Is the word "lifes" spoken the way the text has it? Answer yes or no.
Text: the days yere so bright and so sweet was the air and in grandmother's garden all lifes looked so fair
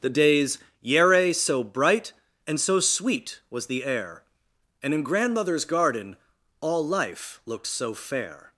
no